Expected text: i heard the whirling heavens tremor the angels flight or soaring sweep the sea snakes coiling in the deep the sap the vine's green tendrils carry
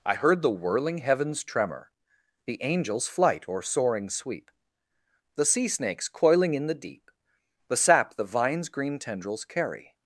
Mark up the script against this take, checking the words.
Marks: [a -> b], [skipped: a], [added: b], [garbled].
i heard the whirling heavens tremor the angels flight or soaring sweep the sea snakes coiling in the deep the sap the vine's green tendrils carry